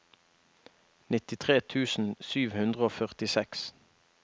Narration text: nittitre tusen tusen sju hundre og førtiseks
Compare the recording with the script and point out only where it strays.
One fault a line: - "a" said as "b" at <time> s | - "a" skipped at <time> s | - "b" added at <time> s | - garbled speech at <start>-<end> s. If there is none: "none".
- "tusen" skipped at 2.1 s